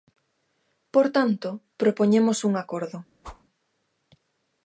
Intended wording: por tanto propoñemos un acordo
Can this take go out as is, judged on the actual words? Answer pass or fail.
pass